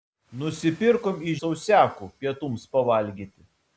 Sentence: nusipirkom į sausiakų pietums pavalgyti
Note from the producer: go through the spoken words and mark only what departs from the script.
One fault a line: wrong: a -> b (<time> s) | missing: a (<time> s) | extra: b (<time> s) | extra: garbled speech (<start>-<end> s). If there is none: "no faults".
no faults